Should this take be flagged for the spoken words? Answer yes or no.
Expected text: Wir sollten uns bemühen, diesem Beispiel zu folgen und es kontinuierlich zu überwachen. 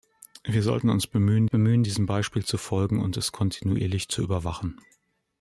yes